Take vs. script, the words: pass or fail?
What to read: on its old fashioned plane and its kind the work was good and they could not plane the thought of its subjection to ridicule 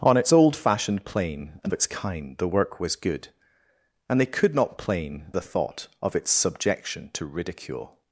pass